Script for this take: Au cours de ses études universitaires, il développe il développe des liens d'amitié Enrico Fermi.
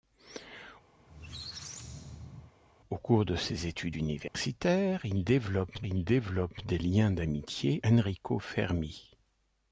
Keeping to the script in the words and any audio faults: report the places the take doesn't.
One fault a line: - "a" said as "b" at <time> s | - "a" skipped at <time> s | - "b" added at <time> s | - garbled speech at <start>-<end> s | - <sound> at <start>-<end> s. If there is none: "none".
- squeak at 1.0-2.5 s
- dropout at 4.3-4.3 s